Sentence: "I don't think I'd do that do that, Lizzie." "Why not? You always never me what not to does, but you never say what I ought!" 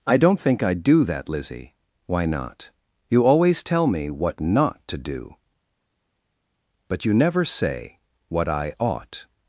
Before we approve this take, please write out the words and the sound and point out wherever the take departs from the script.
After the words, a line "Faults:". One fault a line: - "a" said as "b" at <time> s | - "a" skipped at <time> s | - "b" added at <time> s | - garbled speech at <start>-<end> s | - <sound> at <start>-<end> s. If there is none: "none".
"I don't think I'd do that, Lizzie." "Why not? You always tell me what not to do, but you never say what I ought!"
Faults:
- "do that" skipped at 1.3 s
- "never" said as "tell" at 3.6 s
- "does" said as "do" at 5.0 s